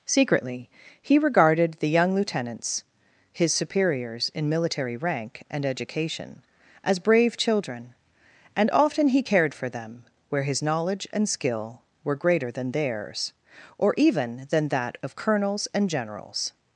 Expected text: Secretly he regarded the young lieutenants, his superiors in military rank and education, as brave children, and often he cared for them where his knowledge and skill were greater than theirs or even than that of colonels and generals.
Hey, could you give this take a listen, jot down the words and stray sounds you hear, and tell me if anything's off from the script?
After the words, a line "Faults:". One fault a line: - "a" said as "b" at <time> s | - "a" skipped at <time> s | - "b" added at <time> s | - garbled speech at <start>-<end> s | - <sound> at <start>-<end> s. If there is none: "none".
Secretly he regarded the young lieutenants, his superiors in military rank and education, as brave children, and often he cared for them where his knowledge and skill were greater than theirs or even than that of colonels and generals.
Faults:
none